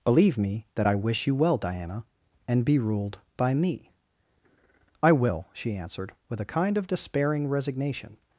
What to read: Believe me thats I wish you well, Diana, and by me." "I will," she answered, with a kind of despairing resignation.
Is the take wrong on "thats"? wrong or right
wrong